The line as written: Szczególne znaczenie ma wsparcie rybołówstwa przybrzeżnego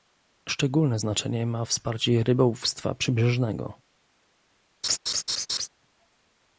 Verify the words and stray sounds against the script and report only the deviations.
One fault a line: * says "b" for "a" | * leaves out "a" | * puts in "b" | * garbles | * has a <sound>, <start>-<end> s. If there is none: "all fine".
* has a laugh, 4.8-5.7 s